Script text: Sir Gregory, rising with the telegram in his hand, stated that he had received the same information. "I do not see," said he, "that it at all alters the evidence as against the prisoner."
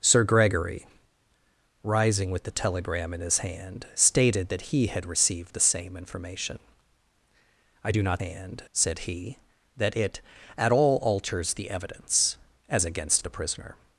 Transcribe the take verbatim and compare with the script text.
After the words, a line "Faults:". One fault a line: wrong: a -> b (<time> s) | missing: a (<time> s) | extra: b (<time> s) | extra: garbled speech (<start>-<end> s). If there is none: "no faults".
Sir Gregory, rising with the telegram in his hand, stated that he had received the same information. "I do not hand," said he, "that it at all alters the evidence as against the prisoner."
Faults:
wrong: see -> hand (8.2 s)